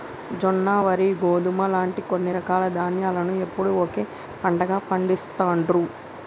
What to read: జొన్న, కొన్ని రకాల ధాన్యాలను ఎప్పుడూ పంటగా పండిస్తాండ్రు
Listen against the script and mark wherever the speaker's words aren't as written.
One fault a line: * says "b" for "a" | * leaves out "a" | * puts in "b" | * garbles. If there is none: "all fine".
* puts in "వరి గోధుమ లాంటి"
* puts in "ఒకే"